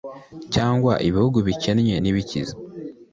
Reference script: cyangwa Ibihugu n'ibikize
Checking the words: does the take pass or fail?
fail